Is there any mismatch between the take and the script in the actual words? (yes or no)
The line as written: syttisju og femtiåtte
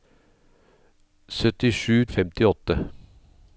no